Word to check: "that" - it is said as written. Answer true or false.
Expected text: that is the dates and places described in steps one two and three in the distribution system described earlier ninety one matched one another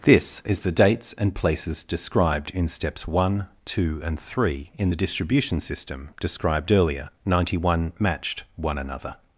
false